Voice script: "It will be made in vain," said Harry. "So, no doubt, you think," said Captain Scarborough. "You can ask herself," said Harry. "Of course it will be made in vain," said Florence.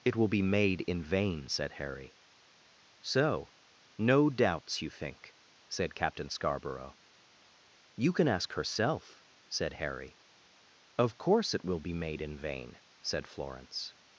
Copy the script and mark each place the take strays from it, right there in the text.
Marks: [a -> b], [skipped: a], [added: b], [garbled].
"It will be made in vain," said Harry. "So, no [doubt, -> doubts] you think," said Captain Scarborough. "You can ask herself," said Harry. "Of course it will be made in vain," said Florence.